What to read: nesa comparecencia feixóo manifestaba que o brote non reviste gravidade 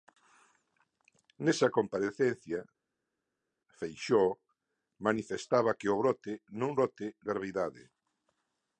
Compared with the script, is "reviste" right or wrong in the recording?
wrong